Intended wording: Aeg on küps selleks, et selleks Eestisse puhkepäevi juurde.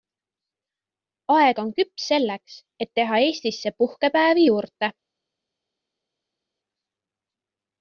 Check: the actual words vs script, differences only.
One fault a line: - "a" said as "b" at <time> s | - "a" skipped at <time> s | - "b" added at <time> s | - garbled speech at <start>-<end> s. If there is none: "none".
- "selleks" said as "teha" at 3.0 s